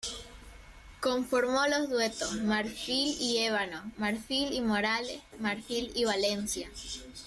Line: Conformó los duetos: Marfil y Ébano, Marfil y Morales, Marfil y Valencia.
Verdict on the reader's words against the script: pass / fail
pass